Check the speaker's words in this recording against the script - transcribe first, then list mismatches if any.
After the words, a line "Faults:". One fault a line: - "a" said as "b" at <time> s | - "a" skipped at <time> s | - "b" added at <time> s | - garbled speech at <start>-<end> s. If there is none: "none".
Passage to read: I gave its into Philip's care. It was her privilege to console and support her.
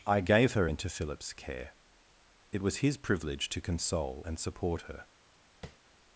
I gave her into Philip's care. It was his privilege to console and support her.
Faults:
- "its" said as "her" at 0.5 s
- "her" said as "his" at 2.8 s